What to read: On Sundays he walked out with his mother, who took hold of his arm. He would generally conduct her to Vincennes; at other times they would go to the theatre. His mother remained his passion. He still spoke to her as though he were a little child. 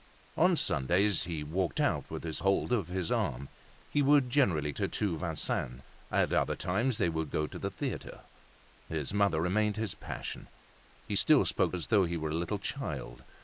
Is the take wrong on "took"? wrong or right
wrong